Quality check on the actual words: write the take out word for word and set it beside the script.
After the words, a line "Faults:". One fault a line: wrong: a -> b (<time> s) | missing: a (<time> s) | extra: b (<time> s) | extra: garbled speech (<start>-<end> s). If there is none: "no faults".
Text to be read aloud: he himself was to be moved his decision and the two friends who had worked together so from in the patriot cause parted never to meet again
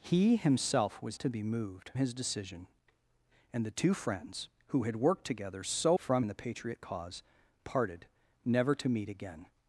he himself was to be moved his decision and the two friends who had worked together so from in the patriot cause parted never to meet again
Faults:
no faults